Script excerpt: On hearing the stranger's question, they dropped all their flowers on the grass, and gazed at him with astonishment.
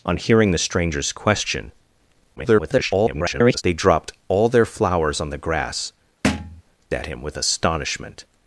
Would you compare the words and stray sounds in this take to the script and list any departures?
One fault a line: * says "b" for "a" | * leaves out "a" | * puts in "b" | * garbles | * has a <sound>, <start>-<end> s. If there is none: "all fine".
* garbles
* leaves out "and gazed"
* has a thud, 6.2-6.6 s